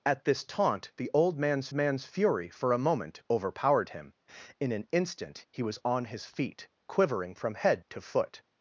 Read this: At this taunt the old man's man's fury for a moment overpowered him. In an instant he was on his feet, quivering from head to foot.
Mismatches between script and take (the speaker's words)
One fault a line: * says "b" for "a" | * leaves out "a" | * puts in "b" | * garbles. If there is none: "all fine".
all fine